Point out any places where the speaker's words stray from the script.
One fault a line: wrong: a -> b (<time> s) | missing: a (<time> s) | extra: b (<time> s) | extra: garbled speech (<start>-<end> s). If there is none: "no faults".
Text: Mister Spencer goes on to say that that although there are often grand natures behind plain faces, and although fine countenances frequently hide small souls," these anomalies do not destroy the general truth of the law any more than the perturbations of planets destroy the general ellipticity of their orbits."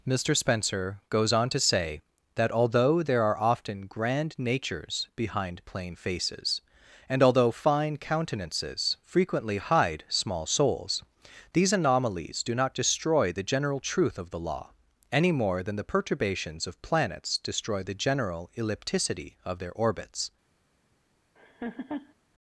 missing: that (2.5 s)